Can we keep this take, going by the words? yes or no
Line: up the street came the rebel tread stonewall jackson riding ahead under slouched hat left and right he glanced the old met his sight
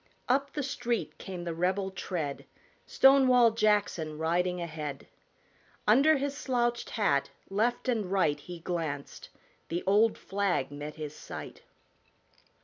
no